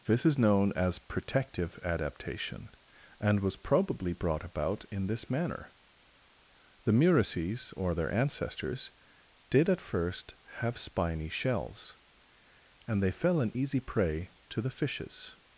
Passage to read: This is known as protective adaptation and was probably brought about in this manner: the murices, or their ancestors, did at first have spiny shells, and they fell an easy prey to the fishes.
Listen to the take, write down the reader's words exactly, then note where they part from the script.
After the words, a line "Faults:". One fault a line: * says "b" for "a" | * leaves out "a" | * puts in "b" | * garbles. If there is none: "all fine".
This is known as protective adaptation and was probably brought about in this manner: the murices, or their ancestors, did at first have spiny shells, and they fell an easy prey to the fishes.
Faults:
all fine